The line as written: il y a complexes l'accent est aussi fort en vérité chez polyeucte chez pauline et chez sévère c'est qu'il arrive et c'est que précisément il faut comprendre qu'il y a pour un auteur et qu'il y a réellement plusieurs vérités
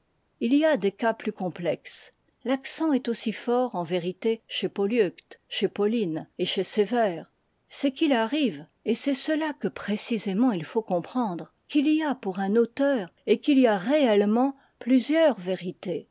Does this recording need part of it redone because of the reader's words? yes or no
yes